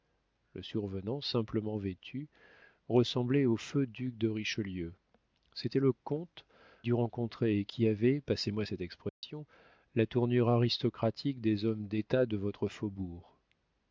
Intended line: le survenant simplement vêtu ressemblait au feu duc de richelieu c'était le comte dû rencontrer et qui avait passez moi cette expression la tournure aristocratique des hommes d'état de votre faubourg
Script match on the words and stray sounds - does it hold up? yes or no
no